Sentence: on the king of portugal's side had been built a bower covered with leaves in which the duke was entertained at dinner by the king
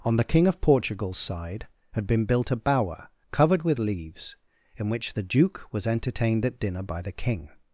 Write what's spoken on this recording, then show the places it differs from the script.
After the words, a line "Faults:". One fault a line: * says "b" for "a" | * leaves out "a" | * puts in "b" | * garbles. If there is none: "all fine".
on the king of portugal's side had been built a bower covered with leaves in which the duke was entertained at dinner by the king
Faults:
all fine